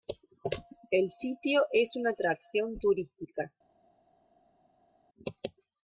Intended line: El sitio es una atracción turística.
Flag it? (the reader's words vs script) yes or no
no